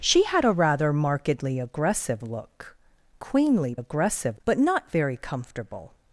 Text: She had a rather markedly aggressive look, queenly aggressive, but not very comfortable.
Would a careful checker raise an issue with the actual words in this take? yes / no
no